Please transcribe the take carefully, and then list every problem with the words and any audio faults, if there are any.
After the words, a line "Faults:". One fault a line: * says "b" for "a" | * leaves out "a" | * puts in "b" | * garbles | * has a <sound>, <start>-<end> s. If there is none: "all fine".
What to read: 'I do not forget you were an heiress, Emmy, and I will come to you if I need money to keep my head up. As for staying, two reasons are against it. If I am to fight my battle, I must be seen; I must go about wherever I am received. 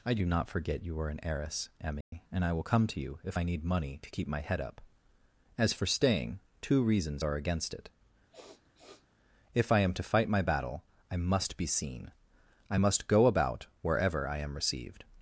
'I do not forget you are an heiress, Emmy, and I will come to you if I need money to keep my head up. As for staying, two reasons are against it. If I am to fight my battle, I must be seen; I must go about wherever I am received.
Faults:
* says "are" for "were"
* has a dropout, 2.0-2.1 s
* has a sniff, 8.3-9.1 s